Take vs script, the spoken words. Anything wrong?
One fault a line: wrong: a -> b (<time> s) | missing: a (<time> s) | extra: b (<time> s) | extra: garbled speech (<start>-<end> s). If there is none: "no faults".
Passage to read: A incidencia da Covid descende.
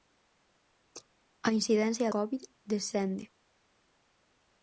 missing: da (2.1 s)